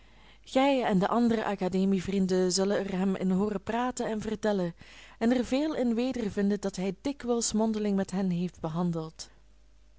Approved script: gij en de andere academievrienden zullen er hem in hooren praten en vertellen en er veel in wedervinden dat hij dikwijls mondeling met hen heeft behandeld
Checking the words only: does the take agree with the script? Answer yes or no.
yes